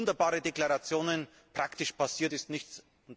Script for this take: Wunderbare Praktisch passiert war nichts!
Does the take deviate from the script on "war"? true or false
true